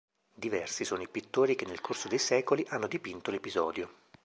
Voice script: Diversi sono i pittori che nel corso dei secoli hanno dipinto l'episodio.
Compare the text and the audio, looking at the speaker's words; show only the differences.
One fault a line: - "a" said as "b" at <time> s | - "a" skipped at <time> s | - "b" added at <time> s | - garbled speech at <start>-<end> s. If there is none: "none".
none